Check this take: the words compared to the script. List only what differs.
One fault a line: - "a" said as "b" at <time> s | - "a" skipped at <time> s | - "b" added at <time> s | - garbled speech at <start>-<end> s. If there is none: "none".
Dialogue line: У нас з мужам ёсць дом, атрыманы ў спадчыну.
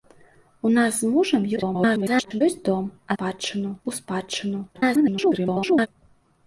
- garbled speech at 1.6-2.4 s
- "атрыманы" said as "спадчыну" at 3.1 s
- garbled speech at 4.7-5.9 s